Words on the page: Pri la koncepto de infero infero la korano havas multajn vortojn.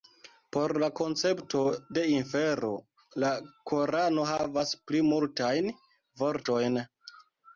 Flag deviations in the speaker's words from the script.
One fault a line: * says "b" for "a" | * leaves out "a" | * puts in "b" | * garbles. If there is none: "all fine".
* says "Por" for "Pri"
* leaves out "infero"
* puts in "pli"